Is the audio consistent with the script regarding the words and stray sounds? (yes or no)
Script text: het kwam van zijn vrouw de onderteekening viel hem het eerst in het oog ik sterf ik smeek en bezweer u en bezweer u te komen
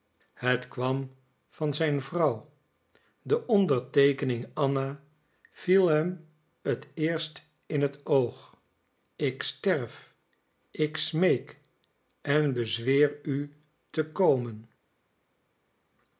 no